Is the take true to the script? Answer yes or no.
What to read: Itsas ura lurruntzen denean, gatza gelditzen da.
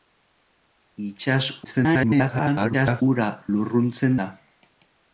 no